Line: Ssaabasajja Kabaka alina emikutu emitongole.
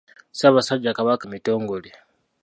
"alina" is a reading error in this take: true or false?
true